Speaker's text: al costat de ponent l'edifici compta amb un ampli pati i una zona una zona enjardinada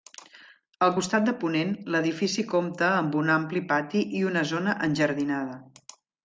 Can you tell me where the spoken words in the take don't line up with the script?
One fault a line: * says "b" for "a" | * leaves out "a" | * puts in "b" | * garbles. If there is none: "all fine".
* leaves out "una zona"